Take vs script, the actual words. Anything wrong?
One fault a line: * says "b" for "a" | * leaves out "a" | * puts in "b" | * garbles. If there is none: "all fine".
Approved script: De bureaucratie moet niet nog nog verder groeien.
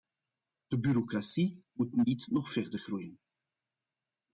* leaves out "nog"